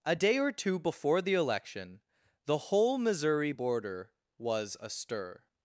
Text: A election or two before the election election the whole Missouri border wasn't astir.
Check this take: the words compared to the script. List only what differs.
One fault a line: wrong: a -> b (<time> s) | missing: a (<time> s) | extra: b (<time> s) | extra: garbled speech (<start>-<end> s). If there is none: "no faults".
wrong: election -> day (0.1 s)
missing: election (2.0 s)
wrong: wasn't -> was (4.4 s)